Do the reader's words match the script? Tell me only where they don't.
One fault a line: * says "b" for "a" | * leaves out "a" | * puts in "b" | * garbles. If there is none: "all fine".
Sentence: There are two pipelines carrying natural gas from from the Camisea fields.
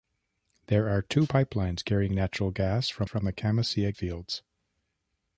all fine